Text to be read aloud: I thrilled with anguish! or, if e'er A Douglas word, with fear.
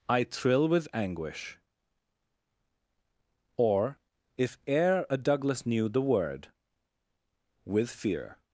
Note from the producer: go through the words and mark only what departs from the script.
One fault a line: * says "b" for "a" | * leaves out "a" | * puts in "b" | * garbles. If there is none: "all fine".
* says "thrill" for "thrilled"
* puts in "knew the"